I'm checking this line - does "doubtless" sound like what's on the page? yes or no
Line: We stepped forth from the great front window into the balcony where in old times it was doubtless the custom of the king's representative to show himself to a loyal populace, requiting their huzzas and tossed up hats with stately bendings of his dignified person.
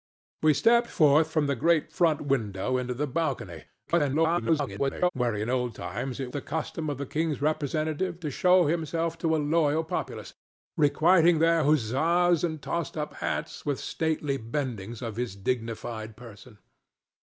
no